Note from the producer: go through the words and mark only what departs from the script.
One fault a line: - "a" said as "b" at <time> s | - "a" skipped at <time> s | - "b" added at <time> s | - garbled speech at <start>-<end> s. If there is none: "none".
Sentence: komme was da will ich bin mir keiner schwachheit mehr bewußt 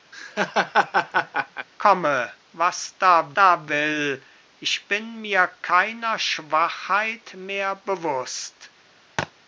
- "da" added at 3.3 s